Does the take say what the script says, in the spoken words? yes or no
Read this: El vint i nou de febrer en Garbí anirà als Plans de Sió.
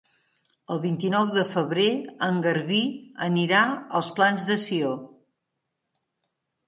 yes